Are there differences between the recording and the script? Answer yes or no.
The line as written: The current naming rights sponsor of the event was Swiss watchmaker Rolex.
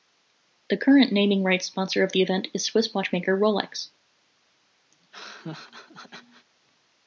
yes